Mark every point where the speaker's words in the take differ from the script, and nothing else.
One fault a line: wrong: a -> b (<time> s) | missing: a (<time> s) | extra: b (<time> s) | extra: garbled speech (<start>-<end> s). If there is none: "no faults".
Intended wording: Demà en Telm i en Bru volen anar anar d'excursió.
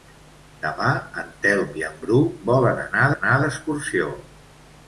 no faults